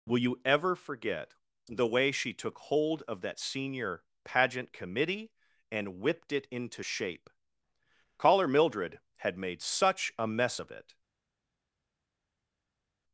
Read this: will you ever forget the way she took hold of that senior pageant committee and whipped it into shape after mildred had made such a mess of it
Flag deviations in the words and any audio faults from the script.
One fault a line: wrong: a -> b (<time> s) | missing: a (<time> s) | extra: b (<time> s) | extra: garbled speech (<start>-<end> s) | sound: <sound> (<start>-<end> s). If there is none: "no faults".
wrong: after -> caller (8.2 s)